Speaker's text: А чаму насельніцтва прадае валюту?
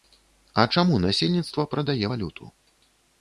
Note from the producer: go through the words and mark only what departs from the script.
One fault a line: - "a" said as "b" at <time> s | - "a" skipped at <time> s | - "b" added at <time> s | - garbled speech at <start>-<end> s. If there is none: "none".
none